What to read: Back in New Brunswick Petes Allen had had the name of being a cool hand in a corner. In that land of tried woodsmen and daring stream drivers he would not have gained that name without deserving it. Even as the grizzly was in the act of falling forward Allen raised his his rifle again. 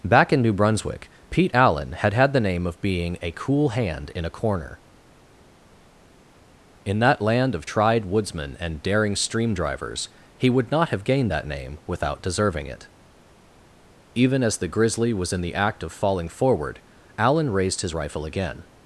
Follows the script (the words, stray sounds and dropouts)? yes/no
no